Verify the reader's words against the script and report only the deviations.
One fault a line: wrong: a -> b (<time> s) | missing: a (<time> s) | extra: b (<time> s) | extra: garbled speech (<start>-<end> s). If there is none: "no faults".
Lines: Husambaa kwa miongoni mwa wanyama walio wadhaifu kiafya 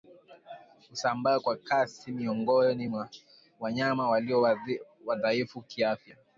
extra: kasi (1.6 s)